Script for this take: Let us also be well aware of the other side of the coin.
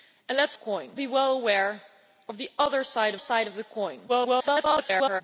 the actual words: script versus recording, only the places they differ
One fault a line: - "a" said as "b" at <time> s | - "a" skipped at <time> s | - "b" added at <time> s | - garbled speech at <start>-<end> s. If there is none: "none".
- "also" said as "coin" at 0.5 s
- "side" added at 3.2 s
- garbled speech at 4.1-5.2 s